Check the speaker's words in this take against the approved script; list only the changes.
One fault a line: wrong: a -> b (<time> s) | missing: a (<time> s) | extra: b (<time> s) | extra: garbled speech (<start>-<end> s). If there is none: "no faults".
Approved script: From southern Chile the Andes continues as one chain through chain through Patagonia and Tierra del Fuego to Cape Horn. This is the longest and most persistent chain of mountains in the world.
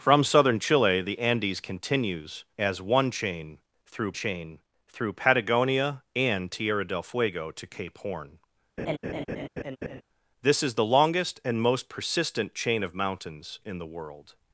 no faults